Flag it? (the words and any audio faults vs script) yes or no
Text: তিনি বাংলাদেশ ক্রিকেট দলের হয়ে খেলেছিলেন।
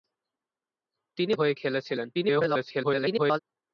yes